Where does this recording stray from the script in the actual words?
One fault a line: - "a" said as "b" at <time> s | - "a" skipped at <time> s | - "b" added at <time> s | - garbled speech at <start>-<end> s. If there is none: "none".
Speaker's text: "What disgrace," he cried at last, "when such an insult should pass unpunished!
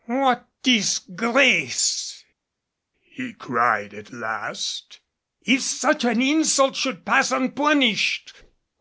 - "when" said as "if" at 5.4 s